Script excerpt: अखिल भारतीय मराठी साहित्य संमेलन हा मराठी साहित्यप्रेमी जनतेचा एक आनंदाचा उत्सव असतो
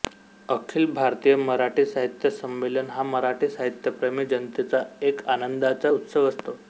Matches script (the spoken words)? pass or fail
pass